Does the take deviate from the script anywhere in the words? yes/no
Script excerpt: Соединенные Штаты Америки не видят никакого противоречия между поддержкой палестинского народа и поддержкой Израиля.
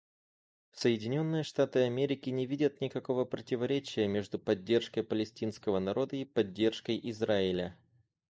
no